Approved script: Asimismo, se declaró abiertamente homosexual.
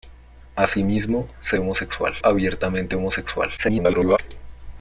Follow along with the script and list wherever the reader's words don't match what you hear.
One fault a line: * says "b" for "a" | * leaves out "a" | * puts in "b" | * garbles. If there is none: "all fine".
* says "homosexual" for "declaró"
* garbles